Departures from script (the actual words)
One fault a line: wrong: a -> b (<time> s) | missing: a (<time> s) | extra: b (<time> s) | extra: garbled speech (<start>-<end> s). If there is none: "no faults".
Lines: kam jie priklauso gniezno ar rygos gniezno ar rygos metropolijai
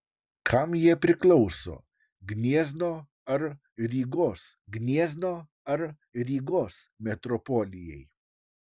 no faults